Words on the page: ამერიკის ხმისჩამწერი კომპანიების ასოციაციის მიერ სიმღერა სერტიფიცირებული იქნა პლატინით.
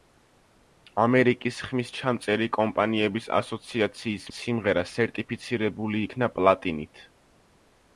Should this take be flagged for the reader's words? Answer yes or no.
yes